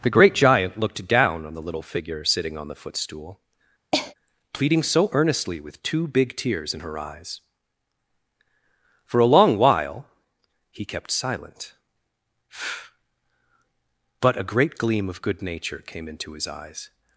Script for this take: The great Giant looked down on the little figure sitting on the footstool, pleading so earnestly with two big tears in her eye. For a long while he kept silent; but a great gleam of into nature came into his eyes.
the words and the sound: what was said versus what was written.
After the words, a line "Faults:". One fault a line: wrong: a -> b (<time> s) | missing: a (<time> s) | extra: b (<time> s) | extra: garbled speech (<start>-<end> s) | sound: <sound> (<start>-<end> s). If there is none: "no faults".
The great Giant looked down on the little figure sitting on the footstool, pleading so earnestly with two big tears in her eyes. For a long while he kept silent; but a great gleam of good nature came into his eyes.
Faults:
sound: cough (3.9-4.1 s)
wrong: eye -> eyes (7.0 s)
wrong: into -> good (15.2 s)